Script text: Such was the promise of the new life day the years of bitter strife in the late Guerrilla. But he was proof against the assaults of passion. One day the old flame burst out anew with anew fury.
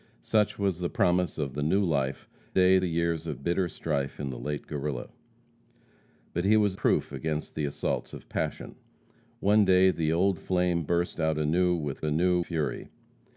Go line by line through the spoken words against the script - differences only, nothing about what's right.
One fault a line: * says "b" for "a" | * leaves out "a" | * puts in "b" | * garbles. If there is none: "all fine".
all fine